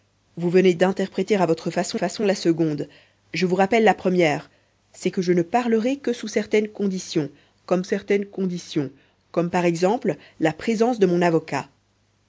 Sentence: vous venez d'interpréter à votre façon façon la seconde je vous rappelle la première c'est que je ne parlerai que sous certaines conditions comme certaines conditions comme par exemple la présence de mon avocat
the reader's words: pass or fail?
pass